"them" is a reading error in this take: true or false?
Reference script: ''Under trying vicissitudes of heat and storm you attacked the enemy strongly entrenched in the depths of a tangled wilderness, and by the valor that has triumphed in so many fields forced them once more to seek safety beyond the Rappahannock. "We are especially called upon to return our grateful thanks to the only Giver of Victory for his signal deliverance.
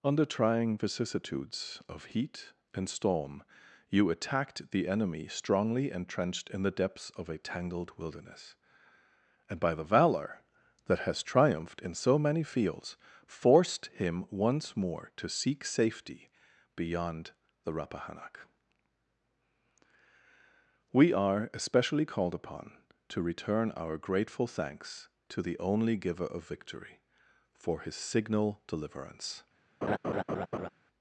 true